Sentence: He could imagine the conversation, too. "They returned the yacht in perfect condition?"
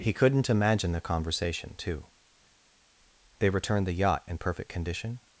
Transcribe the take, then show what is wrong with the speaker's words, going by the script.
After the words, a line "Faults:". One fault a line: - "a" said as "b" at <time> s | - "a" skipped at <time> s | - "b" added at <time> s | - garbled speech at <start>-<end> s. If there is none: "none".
He couldn't imagine the conversation, too. "They returned the yacht in perfect condition?"
Faults:
- "could" said as "couldn't" at 0.1 s